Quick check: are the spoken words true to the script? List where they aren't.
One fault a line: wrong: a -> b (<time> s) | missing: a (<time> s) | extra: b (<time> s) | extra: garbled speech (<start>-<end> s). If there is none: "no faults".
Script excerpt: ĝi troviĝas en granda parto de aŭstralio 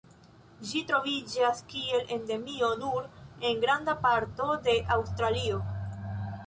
extra: kiel endemio nur (1.7 s)